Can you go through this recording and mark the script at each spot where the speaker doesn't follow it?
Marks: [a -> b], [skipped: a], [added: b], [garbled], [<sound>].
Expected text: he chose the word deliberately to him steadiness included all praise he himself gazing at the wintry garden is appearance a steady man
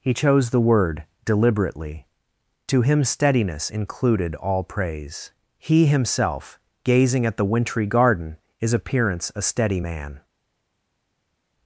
he chose the word deliberately to him steadiness included all praise he himself gazing at the wintry garden is appearance a steady man